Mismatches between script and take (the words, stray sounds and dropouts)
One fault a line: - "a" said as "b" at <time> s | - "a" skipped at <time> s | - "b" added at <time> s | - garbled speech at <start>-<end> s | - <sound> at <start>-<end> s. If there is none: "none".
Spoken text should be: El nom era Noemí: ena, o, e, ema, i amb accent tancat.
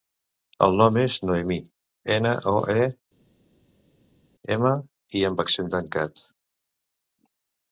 - "era" said as "és" at 1.0 s